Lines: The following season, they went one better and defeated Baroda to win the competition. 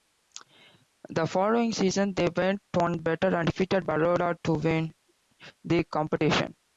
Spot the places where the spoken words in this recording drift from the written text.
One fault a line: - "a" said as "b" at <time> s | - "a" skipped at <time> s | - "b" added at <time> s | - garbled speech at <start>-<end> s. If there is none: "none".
none